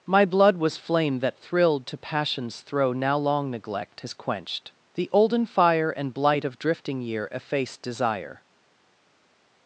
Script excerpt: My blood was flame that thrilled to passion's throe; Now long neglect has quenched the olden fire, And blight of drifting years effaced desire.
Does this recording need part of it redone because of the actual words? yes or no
yes